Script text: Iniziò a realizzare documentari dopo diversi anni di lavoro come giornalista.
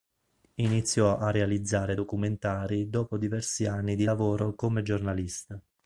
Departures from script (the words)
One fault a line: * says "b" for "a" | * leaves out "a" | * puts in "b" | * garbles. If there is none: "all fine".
all fine